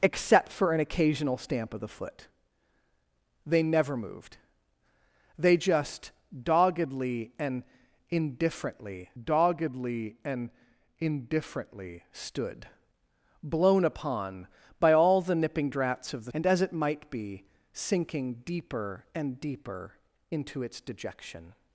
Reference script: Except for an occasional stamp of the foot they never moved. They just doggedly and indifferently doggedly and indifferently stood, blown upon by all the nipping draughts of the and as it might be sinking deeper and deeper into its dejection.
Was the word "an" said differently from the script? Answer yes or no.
no